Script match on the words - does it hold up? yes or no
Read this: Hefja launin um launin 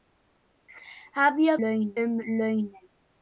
yes